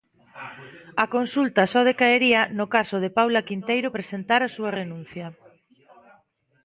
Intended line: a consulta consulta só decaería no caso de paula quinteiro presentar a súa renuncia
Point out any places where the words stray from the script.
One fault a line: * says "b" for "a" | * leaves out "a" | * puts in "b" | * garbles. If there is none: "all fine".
* leaves out "consulta"